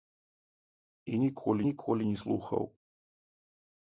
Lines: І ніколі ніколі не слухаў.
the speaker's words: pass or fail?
pass